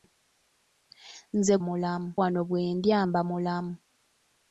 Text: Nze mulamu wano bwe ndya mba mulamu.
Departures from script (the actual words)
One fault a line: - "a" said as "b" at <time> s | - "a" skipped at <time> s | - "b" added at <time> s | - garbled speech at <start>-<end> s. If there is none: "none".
none